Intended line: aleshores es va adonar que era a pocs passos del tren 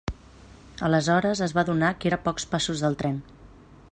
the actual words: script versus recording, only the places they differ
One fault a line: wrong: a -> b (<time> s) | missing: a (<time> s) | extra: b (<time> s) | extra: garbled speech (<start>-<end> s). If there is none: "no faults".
no faults